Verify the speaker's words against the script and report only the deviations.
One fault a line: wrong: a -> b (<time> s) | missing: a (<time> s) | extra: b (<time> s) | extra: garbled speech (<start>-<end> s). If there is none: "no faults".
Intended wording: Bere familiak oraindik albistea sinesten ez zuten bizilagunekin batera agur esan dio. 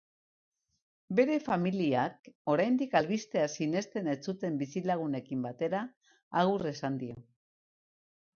no faults